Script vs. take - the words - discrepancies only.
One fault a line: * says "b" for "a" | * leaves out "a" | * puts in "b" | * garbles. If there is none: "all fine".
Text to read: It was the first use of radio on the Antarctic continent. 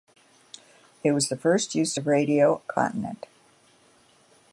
* leaves out "on the Antarctic"